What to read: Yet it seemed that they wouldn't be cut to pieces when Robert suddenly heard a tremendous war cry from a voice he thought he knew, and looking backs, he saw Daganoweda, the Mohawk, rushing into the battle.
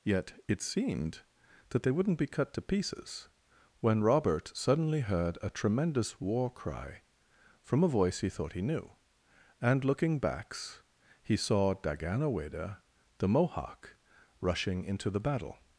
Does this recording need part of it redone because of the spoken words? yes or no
no